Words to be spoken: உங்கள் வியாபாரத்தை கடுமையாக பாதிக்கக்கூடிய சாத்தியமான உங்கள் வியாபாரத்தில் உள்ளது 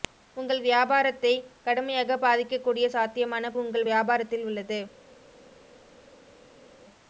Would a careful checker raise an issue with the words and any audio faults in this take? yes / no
no